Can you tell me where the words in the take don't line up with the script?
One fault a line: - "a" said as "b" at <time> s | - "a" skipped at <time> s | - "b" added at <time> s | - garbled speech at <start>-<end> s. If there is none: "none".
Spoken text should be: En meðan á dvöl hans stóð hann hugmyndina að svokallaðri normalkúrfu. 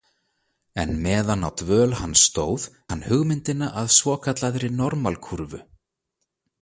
none